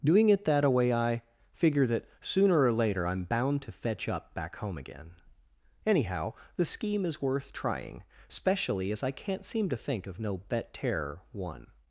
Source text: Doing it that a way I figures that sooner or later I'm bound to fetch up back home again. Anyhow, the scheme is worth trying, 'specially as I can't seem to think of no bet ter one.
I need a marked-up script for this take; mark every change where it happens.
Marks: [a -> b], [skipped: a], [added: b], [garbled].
Doing it that a way I [figures -> figure] that sooner or later I'm bound to fetch up back home again. Anyhow, the scheme is worth trying, 'specially as I can't seem to think of no bet ter one.